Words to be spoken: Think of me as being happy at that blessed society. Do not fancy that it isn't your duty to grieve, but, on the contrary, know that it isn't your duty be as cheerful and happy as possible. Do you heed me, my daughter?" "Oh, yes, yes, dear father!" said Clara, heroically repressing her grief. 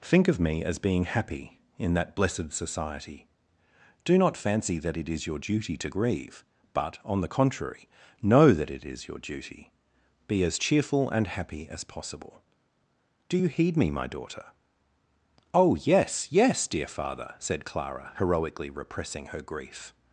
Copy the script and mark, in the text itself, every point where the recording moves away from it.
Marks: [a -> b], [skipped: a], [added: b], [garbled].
Think of me as being happy [at -> in] that blessed society. Do not fancy that it [isn't -> is] your duty to grieve, but, on the contrary, know that it [isn't -> is] your duty be as cheerful and happy as possible. Do you heed me, my daughter?" "Oh, yes, yes, dear father!" said Clara, heroically repressing her grief.